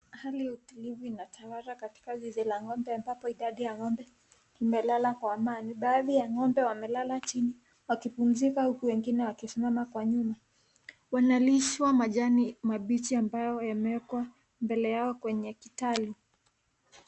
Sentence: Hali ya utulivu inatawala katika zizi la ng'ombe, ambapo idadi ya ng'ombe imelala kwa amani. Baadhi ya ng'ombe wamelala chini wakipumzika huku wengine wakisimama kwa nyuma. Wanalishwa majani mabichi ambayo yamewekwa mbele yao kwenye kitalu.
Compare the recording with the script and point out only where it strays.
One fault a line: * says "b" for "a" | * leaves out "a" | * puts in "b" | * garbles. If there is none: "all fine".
all fine